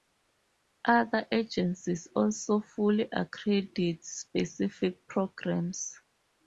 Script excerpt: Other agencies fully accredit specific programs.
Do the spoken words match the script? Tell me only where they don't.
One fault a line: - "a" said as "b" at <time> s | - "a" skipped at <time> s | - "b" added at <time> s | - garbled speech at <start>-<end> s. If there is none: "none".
- "also" added at 2.2 s